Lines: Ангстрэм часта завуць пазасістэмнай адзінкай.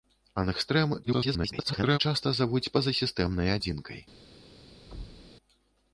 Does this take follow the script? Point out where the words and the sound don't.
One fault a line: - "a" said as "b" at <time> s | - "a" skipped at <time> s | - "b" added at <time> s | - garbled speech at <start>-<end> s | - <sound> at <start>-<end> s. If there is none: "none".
- garbled speech at 1.0-2.0 s
- thud at 4.9-5.3 s